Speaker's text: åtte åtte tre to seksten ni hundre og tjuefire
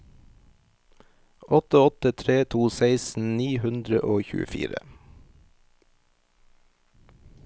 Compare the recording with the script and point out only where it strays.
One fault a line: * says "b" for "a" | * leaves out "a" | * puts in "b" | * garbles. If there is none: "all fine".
all fine